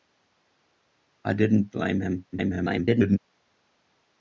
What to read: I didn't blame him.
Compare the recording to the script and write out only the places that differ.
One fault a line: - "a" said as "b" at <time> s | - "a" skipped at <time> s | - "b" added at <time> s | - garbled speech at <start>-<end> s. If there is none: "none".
- garbled speech at 2.3-3.2 s